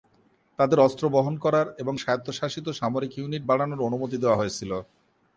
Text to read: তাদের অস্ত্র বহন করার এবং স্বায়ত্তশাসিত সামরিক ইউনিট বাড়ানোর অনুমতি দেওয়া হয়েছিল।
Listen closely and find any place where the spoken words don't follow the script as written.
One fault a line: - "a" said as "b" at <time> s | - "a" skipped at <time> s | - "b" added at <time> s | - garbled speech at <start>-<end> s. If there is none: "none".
none